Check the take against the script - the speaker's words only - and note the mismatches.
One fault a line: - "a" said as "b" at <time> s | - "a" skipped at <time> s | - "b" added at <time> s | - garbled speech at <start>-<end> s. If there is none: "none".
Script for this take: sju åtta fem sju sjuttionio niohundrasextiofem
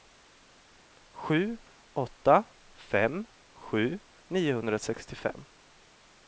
- "sjuttionio" skipped at 4.0 s